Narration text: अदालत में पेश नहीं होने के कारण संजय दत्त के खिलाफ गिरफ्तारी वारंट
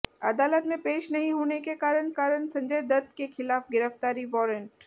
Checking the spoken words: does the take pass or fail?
fail